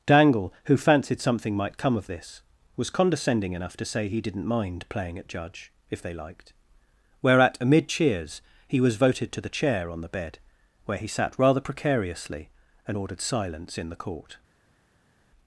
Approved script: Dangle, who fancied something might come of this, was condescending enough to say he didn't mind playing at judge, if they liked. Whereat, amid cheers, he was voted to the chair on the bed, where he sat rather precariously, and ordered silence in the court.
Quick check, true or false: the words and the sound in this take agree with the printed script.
true